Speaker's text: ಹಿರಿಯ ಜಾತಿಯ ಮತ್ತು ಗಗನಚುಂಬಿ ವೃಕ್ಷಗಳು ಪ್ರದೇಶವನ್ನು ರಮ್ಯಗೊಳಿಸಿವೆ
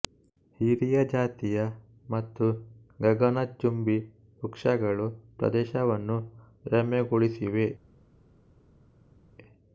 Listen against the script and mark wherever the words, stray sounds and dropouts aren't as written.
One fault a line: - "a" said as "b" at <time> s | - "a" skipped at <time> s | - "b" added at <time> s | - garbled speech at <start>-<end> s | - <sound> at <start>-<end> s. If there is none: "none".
none